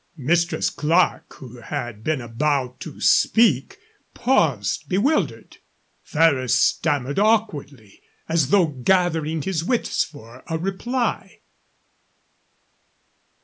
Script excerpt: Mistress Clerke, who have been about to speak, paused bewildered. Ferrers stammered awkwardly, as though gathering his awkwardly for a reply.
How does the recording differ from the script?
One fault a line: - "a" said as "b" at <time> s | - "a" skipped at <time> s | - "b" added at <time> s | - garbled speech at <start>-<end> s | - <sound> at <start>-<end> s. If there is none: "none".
- "have" said as "had" at 1.6 s
- "awkwardly" said as "wits" at 9.6 s